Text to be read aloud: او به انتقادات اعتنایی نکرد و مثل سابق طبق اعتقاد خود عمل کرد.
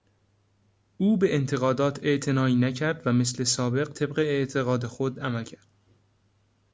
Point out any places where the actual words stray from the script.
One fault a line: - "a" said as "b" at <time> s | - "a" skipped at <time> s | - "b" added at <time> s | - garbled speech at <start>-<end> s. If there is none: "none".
none